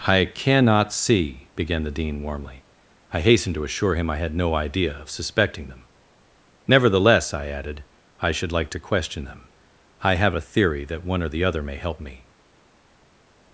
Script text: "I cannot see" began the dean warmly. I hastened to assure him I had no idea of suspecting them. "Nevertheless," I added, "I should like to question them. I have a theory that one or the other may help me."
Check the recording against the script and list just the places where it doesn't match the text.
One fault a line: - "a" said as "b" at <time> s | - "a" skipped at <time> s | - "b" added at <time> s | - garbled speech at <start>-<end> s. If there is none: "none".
none